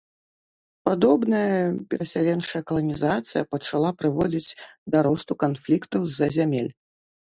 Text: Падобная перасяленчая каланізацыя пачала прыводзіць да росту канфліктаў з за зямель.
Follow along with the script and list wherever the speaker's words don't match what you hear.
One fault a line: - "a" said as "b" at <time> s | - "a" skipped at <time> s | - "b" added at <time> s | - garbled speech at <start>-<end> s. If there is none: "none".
none